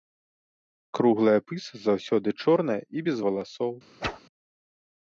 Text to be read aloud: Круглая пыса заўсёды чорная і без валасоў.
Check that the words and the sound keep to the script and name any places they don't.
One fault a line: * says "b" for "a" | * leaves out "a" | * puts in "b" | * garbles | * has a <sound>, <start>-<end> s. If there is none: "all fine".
* has a whoosh, 4.0-4.2 s